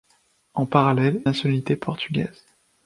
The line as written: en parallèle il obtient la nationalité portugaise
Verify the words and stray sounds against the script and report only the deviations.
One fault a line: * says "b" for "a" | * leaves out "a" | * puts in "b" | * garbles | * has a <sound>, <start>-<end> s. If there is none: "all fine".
* leaves out "il obtient la"